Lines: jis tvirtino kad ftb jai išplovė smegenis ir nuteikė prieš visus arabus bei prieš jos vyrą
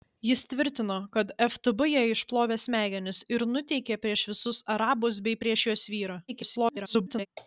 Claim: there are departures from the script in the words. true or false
true